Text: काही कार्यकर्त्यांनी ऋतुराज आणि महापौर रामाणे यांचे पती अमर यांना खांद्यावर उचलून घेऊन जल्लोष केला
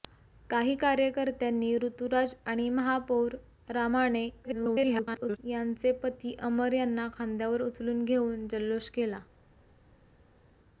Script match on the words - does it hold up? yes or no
no